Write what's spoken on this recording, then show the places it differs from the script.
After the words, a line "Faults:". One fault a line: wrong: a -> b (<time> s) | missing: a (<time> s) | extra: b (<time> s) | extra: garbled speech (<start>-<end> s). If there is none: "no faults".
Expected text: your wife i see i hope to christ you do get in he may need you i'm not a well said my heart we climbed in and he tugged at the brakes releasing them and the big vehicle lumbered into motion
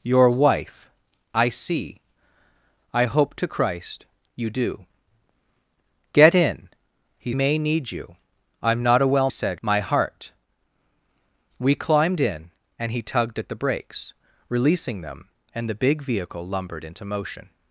your wife i see i hope to christ you do get in he may need you i'm not a well said my heart we climbed in and he tugged at the brakes releasing them and the big vehicle lumbered into motion
Faults:
no faults